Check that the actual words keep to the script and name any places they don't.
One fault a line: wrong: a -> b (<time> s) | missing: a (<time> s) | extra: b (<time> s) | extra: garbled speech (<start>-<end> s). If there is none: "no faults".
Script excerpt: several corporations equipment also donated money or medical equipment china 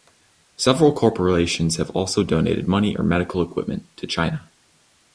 wrong: equipment -> have (1.8 s)
extra: to (4.0 s)